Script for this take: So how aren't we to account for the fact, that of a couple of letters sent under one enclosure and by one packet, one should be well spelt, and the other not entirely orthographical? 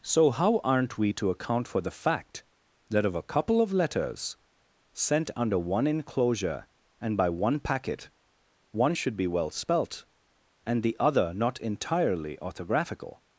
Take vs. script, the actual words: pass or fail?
pass